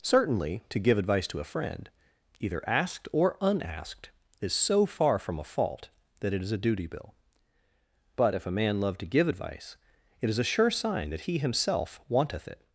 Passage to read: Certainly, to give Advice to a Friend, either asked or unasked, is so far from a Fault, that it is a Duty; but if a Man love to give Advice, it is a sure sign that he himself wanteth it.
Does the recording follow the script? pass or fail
fail